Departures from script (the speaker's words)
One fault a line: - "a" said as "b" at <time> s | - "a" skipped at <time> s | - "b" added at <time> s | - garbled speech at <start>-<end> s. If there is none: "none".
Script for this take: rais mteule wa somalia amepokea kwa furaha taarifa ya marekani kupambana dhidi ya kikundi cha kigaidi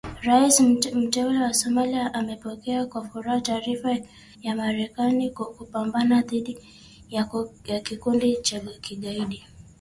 none